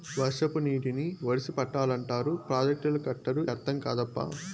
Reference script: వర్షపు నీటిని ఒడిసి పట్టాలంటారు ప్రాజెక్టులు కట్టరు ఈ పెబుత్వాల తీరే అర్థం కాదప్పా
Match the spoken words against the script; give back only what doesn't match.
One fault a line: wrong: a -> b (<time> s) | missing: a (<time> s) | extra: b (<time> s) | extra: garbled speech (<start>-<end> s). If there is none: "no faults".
missing: ఈ పెబుత్వాల తీరే (3.4 s)